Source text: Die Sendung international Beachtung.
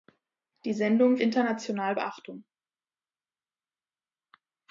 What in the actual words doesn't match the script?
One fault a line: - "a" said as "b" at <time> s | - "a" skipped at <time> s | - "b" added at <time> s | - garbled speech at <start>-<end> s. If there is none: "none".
none